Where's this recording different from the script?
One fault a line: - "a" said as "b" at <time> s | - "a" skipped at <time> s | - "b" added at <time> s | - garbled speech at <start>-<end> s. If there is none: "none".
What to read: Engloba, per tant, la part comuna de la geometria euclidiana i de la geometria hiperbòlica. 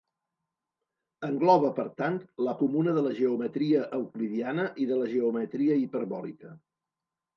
- "part" skipped at 2.5 s